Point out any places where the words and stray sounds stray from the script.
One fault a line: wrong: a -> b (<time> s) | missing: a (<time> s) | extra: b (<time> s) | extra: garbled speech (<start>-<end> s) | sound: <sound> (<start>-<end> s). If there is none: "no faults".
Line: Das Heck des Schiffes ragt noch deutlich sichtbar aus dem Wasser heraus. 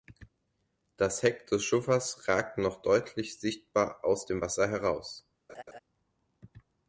sound: laugh (5.5-5.8 s)